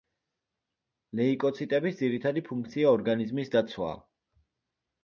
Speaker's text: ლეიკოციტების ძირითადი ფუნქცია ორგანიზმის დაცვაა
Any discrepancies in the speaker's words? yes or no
no